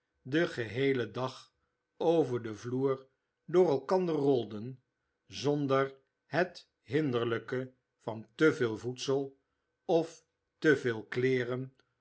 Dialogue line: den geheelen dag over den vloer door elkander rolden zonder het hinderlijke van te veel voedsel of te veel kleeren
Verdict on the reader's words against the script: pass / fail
pass